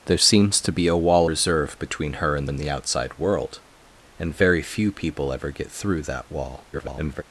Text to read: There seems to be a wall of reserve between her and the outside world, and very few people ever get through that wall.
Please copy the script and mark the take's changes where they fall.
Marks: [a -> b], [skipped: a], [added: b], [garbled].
There seems to be a wall [skipped: of] reserve between her and [added: and] the outside world, and very few people ever get through that wall. [garbled]